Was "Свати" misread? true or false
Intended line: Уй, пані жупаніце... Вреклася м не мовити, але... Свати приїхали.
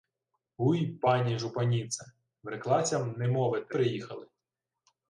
true